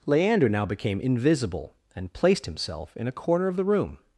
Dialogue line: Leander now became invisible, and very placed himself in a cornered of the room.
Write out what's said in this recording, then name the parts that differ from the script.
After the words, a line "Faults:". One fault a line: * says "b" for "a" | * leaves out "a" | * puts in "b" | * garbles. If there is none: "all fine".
Leander now became invisible, and placed himself in a corner of the room.
Faults:
* leaves out "very"
* says "corner" for "cornered"